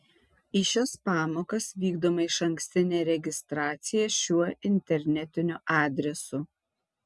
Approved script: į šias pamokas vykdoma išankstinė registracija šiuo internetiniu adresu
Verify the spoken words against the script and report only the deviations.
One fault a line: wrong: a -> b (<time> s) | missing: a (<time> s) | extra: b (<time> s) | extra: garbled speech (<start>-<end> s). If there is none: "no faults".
no faults